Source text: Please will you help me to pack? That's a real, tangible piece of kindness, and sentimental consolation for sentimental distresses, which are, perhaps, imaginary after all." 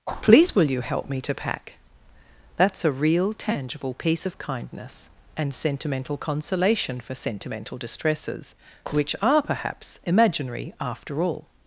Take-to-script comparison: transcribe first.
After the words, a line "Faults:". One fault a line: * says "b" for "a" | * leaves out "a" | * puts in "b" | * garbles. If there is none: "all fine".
Please will you help me to pack? That's a real, tangible piece of kindness, and sentimental consolation for sentimental distresses, which are, perhaps, imaginary after all."
Faults:
all fine